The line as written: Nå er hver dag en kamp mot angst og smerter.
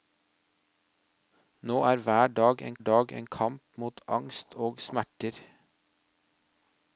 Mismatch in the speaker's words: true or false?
true